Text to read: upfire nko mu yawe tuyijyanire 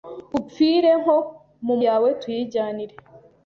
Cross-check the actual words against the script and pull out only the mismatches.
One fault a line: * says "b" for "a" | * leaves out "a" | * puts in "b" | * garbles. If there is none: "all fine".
all fine